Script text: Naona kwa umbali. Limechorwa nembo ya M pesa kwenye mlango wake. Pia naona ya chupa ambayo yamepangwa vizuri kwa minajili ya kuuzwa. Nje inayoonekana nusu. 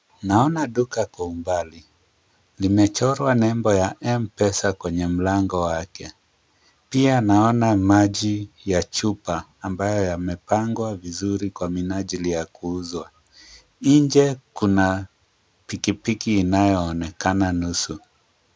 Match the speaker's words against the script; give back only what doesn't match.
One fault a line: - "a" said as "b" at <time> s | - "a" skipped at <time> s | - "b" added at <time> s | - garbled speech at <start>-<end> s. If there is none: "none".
- "duka" added at 0.7 s
- "maji" added at 7.8 s
- "kuna pikipiki" added at 14.5 s